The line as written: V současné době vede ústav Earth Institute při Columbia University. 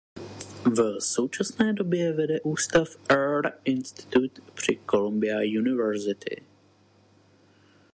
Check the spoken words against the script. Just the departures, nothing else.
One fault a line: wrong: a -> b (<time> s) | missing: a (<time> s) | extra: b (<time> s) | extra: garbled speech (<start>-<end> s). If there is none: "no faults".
no faults